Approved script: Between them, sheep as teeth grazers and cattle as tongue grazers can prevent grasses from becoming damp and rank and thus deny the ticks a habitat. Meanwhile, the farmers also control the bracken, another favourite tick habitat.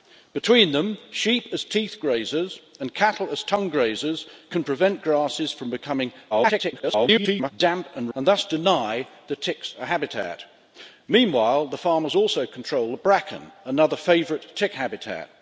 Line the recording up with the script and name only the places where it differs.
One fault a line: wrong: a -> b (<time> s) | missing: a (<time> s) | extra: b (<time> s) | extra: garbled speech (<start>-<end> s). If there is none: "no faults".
extra: garbled speech (6.3-7.5 s)
missing: rank (8.1 s)